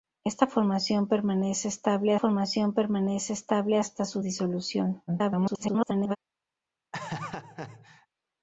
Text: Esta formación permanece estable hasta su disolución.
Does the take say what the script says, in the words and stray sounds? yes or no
no